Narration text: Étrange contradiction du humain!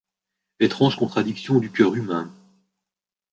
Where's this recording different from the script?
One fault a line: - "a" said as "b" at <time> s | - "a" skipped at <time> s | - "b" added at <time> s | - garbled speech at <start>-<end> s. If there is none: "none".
- "cœur" added at 1.7 s